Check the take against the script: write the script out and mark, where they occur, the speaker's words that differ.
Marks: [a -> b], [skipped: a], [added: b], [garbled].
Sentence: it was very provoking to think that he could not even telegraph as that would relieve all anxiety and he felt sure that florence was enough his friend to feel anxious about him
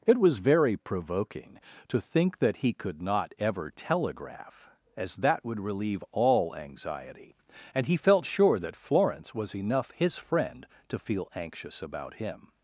it was very provoking to think that he could not [even -> ever] telegraph as that would relieve all anxiety and he felt sure that florence was enough his friend to feel anxious about him